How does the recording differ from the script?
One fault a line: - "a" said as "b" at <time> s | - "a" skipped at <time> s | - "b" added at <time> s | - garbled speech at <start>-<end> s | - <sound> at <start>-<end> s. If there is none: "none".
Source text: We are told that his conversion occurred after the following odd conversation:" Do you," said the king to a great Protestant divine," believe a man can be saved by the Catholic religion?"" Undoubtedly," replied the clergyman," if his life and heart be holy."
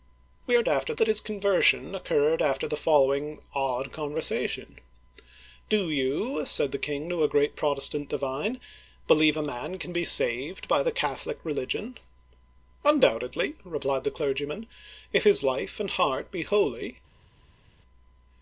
- "told" said as "after" at 0.7 s